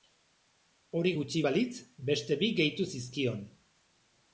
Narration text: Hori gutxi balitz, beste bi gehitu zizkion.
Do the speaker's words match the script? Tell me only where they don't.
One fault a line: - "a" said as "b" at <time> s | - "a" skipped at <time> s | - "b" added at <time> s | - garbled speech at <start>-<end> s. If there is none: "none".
none